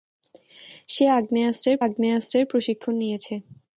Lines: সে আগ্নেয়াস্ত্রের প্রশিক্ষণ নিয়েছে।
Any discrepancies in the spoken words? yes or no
yes